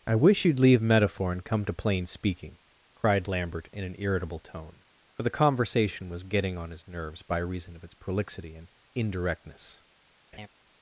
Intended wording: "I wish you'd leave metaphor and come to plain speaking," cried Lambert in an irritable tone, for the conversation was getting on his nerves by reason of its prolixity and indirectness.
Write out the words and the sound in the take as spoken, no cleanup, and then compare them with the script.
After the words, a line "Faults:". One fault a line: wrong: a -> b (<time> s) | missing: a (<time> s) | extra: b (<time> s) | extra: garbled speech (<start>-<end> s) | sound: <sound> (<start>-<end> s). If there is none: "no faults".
"I wish you'd leave metaphor and come to plain speaking," cried Lambert in an irritable tone, for the conversation was getting on his nerves by reason of its prolixity and indirectness.
Faults:
sound: laugh (10.3-10.5 s)